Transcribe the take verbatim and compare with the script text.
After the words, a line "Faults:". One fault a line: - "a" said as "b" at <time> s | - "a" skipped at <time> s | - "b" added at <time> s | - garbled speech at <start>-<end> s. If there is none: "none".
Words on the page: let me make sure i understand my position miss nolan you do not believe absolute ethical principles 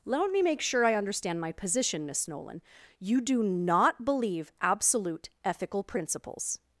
let me make sure i understand my position miss nolan you do not believe absolute ethical principles
Faults:
none